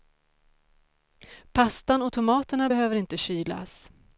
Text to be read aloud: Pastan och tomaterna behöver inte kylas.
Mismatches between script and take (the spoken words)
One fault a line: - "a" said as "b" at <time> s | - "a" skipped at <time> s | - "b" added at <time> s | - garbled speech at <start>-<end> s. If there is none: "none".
none